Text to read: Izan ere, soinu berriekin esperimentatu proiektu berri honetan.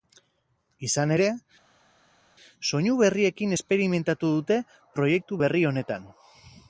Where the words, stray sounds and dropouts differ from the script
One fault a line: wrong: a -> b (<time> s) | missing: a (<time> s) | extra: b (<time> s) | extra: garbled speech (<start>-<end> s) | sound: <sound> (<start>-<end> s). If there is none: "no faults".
extra: dute (4.4 s)